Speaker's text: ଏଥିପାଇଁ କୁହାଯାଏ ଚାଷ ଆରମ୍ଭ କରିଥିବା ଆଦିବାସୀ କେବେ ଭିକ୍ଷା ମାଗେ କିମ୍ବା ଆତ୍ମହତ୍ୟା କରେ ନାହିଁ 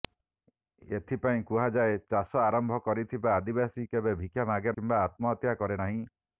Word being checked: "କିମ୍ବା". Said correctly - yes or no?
yes